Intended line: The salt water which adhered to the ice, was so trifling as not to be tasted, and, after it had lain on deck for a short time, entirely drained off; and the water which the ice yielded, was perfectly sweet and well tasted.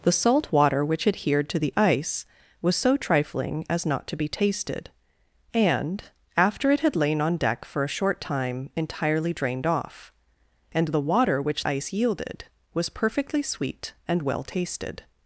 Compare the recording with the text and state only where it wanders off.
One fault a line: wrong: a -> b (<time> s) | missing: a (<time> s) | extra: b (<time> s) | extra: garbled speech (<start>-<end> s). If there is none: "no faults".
missing: the (11.7 s)